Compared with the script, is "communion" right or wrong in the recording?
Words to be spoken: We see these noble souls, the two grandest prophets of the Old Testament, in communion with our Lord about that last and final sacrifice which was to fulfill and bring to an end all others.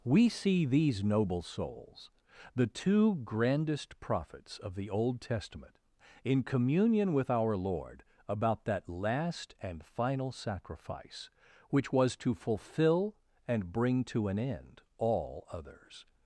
right